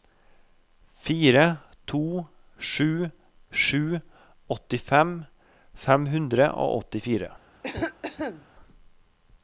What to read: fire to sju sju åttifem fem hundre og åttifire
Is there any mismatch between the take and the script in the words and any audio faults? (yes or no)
yes